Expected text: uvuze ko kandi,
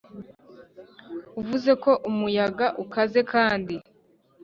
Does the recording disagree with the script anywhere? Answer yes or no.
yes